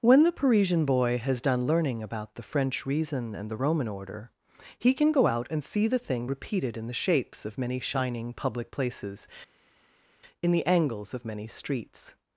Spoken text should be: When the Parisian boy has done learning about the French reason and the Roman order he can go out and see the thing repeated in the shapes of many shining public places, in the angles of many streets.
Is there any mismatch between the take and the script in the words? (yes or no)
no